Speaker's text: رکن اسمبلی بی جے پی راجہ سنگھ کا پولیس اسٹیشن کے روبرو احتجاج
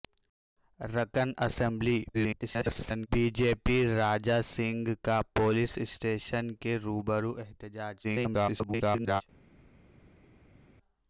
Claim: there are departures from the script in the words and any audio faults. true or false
true